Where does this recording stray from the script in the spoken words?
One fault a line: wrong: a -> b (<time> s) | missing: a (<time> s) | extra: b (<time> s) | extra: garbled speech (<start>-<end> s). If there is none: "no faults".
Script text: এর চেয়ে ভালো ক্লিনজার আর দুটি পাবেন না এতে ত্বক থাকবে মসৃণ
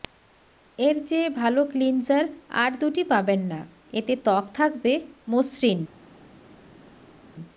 no faults